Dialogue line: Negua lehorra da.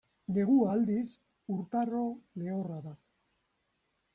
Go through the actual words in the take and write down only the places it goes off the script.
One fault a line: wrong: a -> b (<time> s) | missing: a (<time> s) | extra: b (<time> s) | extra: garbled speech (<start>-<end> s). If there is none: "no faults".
extra: aldiz urtaro (0.7 s)